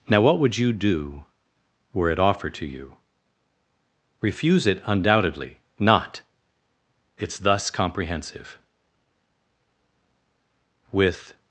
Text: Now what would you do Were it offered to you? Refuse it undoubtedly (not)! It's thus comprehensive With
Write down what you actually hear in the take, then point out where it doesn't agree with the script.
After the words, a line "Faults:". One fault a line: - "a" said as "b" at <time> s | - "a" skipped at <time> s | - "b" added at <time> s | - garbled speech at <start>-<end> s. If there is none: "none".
Now what would you do Were it offered to you? Refuse it undoubtedly (not)! It's thus comprehensive With
Faults:
none